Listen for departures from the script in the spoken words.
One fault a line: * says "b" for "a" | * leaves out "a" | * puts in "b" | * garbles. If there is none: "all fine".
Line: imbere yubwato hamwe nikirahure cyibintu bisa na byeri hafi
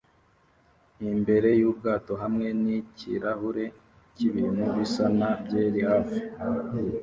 all fine